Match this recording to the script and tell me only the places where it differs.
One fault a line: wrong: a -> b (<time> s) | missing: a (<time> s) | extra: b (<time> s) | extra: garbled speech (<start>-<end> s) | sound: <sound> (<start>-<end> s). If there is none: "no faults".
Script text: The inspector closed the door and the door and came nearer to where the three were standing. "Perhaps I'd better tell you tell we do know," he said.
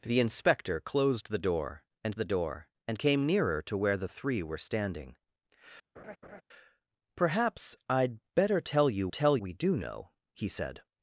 sound: laugh (6.0-6.4 s)